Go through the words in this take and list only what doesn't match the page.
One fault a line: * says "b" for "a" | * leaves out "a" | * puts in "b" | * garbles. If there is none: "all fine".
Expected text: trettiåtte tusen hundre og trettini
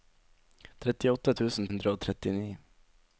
all fine